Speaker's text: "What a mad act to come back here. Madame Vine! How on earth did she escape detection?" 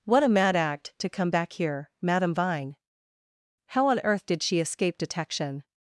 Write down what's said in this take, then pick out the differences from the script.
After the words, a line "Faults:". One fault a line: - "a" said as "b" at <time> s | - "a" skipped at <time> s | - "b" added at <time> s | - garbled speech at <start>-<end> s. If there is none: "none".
"What a mad act to come back here. Madame Vine! How on earth did she escape detection?"
Faults:
none